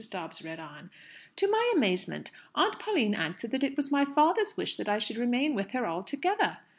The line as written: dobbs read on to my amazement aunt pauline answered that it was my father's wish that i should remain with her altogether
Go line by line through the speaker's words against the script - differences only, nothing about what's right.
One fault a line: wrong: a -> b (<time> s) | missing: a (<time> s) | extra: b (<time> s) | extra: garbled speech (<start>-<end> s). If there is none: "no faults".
no faults